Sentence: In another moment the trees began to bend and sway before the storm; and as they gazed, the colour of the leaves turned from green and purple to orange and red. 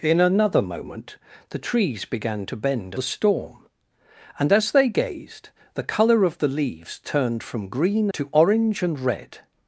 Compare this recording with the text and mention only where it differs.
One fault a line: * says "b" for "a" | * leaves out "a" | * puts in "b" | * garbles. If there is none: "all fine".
* leaves out "and sway before"
* leaves out "and purple"